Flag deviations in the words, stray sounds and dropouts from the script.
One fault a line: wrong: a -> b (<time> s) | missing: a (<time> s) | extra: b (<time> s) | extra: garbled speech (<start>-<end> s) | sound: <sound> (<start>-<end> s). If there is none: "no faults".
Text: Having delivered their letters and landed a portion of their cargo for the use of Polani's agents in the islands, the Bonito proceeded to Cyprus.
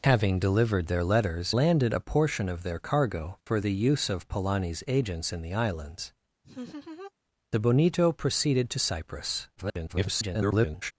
missing: and (1.5 s)
sound: laugh (6.4-7.1 s)
extra: garbled speech (9.6-10.9 s)